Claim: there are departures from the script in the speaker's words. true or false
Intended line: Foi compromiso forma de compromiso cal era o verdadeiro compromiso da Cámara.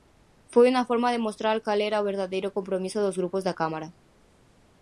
true